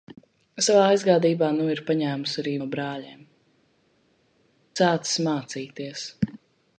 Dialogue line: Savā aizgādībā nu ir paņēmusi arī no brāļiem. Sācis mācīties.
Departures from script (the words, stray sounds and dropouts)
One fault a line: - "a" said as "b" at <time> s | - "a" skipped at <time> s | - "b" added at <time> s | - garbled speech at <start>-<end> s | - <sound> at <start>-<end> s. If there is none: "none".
none